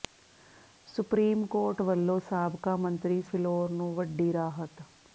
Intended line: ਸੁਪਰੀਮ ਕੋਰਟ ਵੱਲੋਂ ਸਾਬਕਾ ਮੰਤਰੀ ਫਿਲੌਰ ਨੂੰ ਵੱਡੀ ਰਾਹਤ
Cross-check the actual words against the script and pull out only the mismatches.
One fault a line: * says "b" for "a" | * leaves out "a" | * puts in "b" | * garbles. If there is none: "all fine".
all fine